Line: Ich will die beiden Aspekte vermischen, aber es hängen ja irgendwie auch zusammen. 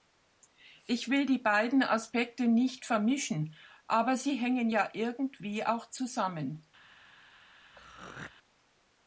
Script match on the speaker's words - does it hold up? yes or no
no